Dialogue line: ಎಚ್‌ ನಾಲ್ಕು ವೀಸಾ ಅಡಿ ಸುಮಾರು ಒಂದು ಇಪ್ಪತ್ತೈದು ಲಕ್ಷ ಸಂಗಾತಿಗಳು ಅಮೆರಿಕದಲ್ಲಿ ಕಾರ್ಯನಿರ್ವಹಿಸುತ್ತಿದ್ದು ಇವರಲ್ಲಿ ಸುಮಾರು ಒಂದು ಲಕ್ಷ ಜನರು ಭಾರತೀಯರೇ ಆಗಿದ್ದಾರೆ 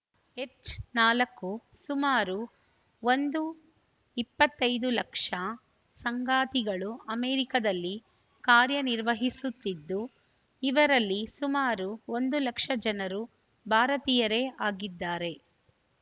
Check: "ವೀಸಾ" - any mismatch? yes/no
yes